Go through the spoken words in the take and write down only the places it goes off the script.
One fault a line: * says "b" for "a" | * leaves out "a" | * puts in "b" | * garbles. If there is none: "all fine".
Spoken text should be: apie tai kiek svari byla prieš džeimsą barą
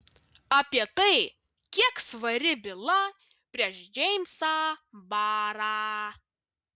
all fine